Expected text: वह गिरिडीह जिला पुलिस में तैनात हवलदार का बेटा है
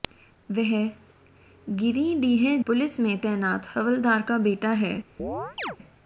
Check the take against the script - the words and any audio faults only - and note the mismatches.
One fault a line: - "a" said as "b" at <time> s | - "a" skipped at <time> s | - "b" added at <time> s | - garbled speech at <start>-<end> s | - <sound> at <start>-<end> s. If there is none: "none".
- "जिला" skipped at 2.6 s
- chirp at 5.2-5.8 s